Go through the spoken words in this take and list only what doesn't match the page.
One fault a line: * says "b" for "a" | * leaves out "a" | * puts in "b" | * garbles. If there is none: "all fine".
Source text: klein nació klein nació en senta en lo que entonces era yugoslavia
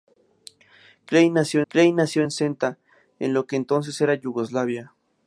all fine